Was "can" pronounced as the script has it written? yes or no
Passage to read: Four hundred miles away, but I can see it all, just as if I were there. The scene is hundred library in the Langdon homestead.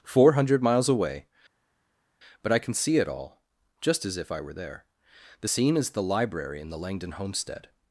yes